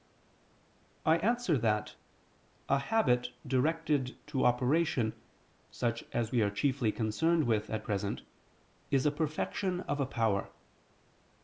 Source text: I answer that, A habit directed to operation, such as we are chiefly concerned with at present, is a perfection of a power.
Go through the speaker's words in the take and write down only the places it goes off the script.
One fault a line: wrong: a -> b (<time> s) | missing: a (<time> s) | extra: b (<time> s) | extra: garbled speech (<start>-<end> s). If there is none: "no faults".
no faults